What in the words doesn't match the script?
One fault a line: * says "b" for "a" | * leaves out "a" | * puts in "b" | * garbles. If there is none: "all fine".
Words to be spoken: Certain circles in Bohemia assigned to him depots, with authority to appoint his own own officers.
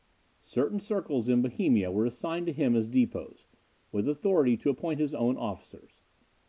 * puts in "were"
* puts in "as"
* leaves out "own"